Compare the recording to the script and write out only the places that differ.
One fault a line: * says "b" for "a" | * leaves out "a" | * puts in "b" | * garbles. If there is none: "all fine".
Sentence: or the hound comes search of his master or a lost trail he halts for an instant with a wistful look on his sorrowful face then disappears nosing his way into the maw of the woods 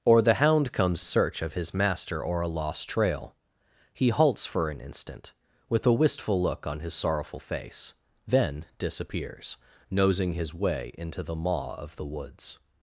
all fine